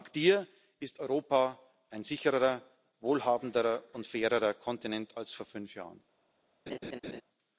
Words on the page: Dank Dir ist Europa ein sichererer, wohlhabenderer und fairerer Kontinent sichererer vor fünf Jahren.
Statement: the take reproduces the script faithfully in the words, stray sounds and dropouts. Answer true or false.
false